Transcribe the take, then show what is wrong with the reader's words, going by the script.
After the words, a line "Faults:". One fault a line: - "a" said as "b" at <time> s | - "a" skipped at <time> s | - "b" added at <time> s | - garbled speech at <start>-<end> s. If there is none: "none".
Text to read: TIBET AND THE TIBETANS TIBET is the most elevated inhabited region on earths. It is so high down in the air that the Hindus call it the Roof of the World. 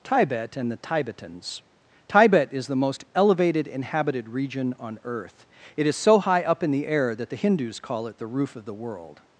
TIBET AND THE TIBETANS TIBET is the most elevated inhabited region on earth. It is so high up in the air that the Hindus call it the Roof of the World.
Faults:
- "earths" said as "earth" at 5.0 s
- "down" said as "up" at 6.4 s